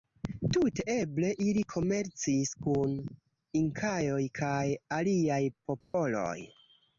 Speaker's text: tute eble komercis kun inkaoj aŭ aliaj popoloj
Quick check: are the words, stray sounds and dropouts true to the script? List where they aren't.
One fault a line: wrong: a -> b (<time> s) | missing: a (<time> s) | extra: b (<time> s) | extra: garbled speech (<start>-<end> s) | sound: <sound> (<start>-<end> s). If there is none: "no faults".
extra: ili (1.4 s)
wrong: aŭ -> kaj (4.4 s)
sound: dropout (5.8-5.9 s)